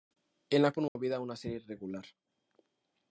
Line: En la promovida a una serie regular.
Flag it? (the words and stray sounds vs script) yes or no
yes